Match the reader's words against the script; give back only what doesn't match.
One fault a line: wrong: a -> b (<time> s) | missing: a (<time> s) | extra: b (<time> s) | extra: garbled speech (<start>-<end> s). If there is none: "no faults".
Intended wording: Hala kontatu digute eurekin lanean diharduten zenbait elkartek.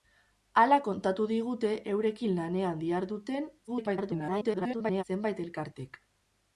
extra: garbled speech (3.7-5.0 s)